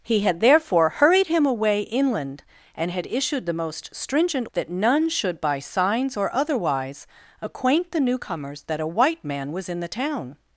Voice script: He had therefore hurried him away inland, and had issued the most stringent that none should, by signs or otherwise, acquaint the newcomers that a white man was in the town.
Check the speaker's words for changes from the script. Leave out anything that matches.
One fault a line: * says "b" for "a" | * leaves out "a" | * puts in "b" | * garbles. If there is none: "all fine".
all fine